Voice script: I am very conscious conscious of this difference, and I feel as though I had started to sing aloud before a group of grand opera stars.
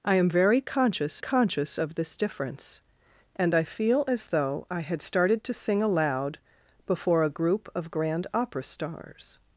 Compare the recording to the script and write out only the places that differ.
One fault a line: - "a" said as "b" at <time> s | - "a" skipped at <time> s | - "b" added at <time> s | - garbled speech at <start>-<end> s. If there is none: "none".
none